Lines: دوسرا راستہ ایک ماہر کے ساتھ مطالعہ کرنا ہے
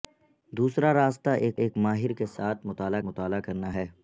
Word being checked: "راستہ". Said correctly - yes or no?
yes